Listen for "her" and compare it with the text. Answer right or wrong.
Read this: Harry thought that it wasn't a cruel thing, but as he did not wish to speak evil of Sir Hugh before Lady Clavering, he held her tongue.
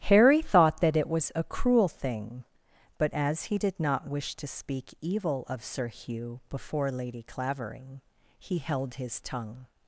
wrong